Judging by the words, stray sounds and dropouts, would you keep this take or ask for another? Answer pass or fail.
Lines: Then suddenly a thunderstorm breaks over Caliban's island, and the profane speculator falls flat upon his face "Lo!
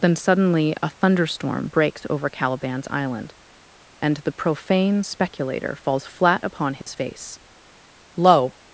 fail